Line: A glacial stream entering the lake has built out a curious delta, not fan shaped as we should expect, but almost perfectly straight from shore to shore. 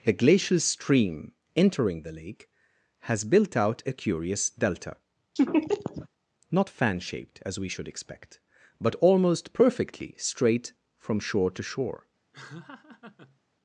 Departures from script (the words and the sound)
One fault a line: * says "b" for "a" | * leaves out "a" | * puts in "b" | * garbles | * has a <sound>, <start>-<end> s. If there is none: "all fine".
* has a laugh, 5.4-6.1 s
* has a laugh, 12.3-13.4 s